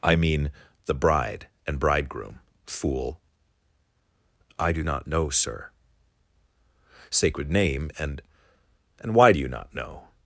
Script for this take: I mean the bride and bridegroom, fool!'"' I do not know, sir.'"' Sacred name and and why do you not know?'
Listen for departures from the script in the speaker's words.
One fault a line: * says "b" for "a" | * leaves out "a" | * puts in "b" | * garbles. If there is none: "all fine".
all fine